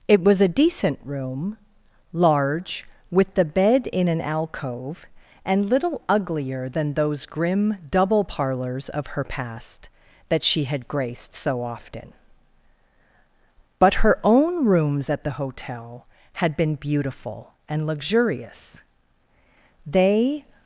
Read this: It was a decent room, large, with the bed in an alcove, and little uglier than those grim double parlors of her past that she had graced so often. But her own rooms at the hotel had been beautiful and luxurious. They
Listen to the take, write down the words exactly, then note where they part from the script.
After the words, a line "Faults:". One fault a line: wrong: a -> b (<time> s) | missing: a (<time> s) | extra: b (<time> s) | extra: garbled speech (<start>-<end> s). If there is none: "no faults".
It was a decent room, large, with the bed in an alcove, and little uglier than those grim double parlors of her past that she had graced so often. But her own rooms at the hotel had been beautiful and luxurious. They
Faults:
no faults